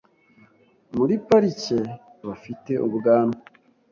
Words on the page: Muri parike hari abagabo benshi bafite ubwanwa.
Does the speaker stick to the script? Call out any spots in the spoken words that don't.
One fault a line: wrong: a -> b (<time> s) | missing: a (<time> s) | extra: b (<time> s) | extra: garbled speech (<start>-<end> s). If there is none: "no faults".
missing: hari abagabo benshi (1.8 s)